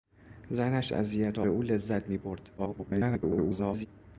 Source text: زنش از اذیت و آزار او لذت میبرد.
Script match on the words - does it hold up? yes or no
no